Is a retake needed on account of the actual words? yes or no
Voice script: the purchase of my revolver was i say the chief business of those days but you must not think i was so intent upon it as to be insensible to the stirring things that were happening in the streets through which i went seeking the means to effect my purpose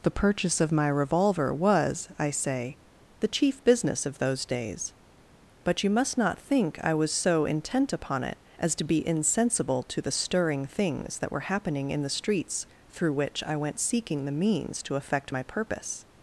no